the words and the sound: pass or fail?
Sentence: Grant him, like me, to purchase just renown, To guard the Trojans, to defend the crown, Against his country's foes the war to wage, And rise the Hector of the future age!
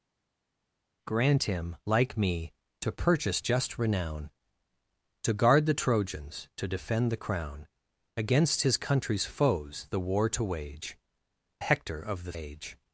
fail